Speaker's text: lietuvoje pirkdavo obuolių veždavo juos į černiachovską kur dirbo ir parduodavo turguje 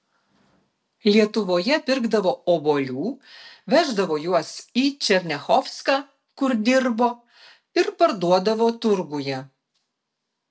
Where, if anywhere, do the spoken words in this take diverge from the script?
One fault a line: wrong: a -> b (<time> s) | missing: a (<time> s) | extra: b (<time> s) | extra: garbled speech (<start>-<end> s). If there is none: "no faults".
no faults